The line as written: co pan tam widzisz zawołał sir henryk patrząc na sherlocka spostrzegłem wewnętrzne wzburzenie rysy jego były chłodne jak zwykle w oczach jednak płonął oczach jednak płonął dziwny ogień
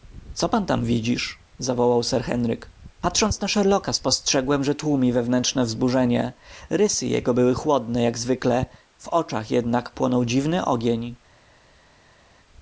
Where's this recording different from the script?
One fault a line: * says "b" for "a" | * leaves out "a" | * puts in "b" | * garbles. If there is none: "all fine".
* puts in "że tłumi"
* leaves out "oczach jednak płonął"